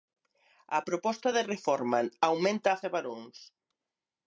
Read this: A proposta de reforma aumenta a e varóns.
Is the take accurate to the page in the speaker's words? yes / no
yes